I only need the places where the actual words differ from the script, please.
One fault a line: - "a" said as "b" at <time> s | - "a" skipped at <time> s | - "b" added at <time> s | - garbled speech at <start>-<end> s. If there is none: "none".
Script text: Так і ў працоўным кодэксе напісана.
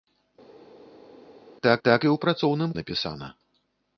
- "так" added at 1.9 s
- "кодэксе" skipped at 2.7 s